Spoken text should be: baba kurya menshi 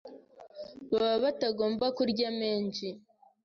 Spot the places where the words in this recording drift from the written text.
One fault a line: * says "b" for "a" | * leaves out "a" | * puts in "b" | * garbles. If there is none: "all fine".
* puts in "batagomba"